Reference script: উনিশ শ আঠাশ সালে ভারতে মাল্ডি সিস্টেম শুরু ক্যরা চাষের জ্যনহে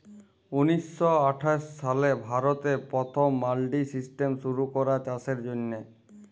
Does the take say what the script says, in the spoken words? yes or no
no